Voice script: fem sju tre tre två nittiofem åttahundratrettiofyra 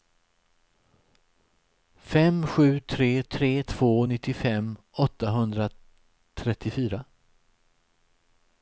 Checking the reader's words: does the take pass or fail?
pass